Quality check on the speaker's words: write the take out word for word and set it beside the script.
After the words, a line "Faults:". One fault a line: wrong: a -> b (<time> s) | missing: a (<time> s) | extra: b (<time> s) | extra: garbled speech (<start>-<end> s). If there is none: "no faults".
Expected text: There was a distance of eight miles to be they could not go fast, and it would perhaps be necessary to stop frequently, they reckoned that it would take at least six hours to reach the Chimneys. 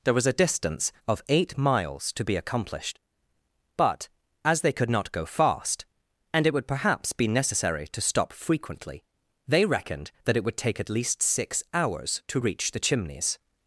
There was a distance of eight miles to be accomplished; but, as they could not go fast, and it would perhaps be necessary to stop frequently, they reckoned that it would take at least six hours to reach the Chimneys.
Faults:
extra: accomplished but as (2.4 s)